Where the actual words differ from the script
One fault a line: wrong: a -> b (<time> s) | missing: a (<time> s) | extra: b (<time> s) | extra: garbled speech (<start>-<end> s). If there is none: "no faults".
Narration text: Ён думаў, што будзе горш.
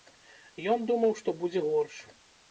no faults